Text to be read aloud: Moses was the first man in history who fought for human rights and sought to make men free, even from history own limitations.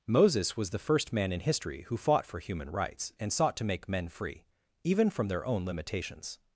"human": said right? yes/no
yes